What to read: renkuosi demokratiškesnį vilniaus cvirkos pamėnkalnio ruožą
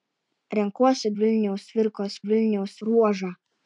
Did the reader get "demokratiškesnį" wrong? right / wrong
wrong